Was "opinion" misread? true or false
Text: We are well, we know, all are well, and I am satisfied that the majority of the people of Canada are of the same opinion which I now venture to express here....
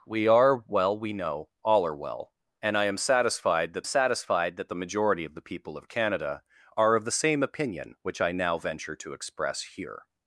false